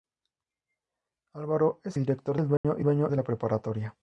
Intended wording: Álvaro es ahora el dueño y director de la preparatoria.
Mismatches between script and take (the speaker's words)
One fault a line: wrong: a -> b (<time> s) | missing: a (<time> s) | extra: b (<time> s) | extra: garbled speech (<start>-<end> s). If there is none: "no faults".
wrong: ahora -> director (2.0 s)
wrong: director -> dueño (2.8 s)